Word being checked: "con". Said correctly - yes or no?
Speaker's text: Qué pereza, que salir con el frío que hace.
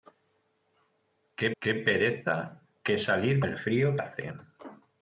no